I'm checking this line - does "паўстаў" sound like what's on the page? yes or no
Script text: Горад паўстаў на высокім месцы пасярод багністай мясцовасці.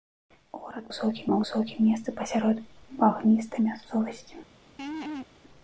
no